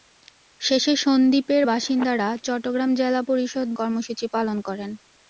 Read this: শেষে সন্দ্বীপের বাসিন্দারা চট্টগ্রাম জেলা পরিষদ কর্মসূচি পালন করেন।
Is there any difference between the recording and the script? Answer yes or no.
no